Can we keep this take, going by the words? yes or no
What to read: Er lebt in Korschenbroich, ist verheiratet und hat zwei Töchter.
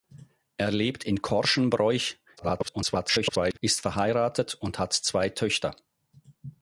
no